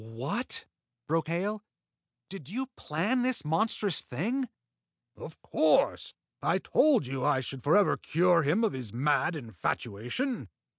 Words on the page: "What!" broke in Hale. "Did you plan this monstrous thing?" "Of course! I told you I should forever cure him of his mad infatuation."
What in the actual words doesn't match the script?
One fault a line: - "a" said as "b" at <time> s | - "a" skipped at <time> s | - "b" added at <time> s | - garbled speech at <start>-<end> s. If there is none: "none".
- "in" skipped at 1.3 s